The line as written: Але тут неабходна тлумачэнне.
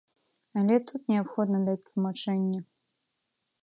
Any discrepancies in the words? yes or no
yes